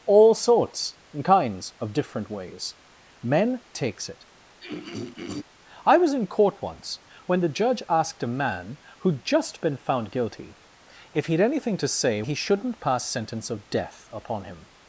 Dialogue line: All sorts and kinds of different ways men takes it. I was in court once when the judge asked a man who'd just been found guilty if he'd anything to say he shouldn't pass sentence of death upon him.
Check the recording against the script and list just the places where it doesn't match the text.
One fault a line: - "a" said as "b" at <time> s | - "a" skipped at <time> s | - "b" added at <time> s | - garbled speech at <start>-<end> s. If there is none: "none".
none